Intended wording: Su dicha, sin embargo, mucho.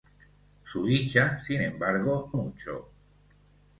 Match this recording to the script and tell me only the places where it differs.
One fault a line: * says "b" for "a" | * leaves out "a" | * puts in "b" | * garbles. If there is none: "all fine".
all fine